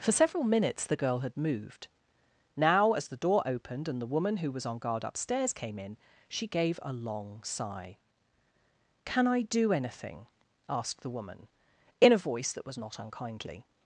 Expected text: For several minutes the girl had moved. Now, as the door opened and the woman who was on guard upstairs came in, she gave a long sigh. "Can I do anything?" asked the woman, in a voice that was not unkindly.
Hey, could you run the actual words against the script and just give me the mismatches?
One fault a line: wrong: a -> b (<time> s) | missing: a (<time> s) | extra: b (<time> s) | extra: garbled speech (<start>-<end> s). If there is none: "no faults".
no faults